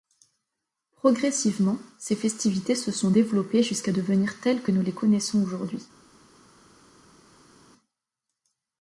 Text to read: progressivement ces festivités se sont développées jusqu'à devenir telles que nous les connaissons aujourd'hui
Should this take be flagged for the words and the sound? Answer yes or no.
no